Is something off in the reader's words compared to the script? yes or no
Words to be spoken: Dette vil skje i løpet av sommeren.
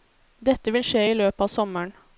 no